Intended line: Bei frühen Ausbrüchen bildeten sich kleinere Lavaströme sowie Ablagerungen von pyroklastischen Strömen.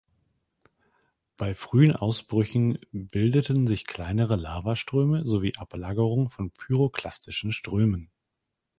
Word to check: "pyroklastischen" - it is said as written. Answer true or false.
true